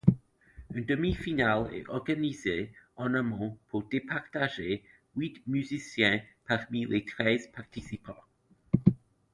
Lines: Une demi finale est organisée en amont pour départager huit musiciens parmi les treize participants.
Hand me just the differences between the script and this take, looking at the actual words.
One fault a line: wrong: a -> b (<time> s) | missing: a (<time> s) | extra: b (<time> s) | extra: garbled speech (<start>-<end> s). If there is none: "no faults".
no faults